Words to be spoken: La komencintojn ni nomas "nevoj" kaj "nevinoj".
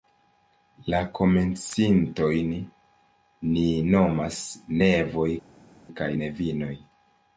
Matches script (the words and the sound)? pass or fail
pass